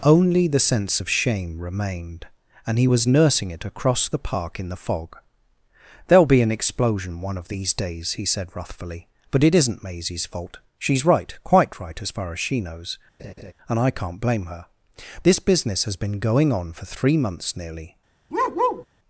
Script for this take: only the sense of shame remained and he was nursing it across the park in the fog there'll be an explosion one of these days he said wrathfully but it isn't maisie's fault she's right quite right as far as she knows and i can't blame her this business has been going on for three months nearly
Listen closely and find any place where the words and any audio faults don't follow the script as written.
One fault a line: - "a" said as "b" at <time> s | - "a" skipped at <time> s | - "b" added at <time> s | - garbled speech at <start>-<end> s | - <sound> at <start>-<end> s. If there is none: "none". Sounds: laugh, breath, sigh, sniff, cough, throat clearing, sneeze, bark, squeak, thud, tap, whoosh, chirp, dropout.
- laugh at 13.2-13.5 s
- bark at 18.3-18.9 s